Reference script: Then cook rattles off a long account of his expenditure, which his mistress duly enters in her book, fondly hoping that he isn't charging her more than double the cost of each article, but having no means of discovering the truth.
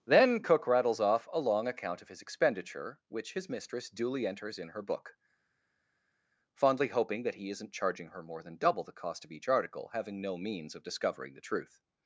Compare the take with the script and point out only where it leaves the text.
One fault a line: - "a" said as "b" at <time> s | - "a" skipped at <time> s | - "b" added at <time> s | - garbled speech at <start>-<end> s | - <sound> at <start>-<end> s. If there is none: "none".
- "but" skipped at 9.9 s